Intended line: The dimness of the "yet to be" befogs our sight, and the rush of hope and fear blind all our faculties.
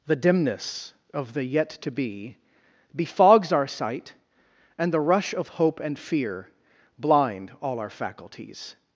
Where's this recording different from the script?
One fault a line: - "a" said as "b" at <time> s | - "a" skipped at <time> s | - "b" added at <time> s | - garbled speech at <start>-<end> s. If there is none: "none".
none